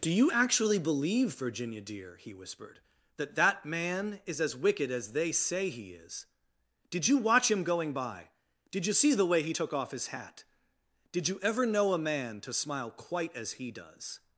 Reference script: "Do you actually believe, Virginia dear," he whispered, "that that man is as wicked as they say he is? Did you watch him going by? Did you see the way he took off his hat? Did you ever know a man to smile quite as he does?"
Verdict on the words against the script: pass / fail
pass